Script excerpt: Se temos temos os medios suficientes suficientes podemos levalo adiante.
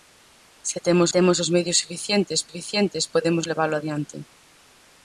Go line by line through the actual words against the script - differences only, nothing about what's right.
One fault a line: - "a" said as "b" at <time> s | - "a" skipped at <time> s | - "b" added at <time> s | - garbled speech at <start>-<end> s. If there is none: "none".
none